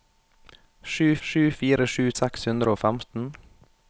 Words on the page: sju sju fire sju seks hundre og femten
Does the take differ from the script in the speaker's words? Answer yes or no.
no